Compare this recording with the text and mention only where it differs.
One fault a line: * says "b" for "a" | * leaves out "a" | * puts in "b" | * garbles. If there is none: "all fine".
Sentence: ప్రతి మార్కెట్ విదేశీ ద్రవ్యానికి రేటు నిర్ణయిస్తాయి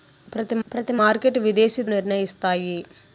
* puts in "ప్రతి"
* leaves out "ద్రవ్యానికి రేటు"